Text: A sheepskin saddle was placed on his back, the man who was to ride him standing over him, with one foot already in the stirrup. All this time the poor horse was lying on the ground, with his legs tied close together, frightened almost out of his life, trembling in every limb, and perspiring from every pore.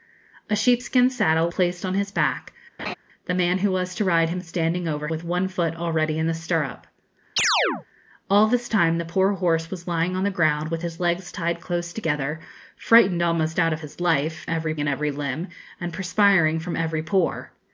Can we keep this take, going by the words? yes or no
no